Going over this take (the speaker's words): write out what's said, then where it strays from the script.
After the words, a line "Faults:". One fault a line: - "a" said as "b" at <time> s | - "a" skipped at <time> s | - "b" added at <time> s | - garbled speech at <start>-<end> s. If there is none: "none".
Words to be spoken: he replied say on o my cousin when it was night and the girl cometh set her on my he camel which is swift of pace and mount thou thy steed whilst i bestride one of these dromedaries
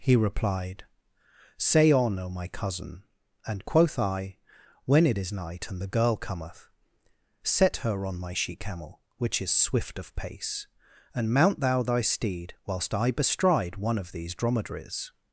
he replied say on o my cousin and quoth i when it is night and the girl cometh set her on my she camel which is swift of pace and mount thou thy steed whilst i bestride one of these dromedaries
Faults:
- "and quoth i" added at 3.5 s
- "was" said as "is" at 5.2 s
- "he" said as "she" at 8.3 s